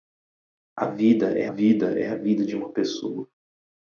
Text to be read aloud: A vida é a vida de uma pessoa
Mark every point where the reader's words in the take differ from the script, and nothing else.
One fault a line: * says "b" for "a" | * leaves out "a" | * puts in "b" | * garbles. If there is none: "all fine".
* puts in "vida é"